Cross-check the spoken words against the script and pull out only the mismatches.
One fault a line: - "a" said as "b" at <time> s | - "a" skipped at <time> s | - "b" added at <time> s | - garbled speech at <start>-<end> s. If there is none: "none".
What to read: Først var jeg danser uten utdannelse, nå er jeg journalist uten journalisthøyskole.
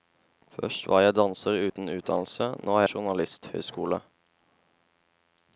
- "jeg journalist uten" skipped at 2.9 s